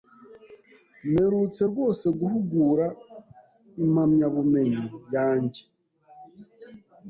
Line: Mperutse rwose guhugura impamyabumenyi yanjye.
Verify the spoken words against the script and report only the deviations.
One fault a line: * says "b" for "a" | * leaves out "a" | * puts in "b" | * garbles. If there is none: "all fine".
all fine